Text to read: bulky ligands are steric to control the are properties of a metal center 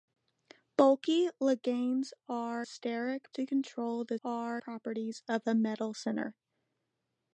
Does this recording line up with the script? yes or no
yes